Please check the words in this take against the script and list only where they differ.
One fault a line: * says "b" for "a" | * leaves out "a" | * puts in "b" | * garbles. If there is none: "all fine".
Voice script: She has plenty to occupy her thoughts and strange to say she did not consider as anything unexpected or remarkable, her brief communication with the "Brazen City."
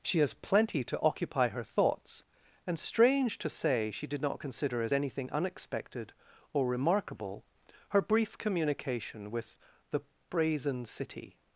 all fine